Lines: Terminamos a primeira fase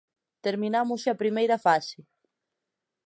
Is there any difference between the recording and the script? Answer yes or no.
no